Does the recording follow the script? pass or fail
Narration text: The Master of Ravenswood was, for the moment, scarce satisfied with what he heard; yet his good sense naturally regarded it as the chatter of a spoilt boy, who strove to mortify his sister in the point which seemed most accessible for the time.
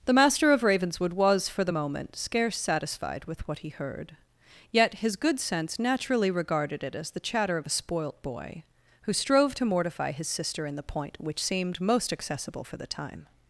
pass